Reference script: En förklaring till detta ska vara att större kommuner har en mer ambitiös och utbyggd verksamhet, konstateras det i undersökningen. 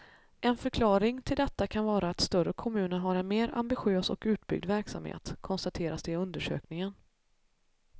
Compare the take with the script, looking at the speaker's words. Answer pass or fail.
fail